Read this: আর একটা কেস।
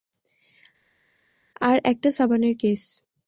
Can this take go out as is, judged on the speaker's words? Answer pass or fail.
fail